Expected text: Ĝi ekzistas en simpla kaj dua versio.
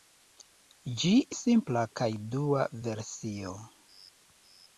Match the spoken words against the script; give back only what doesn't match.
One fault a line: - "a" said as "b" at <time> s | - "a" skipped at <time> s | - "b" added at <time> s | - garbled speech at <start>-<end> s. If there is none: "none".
- "ekzistas en" skipped at 1.1 s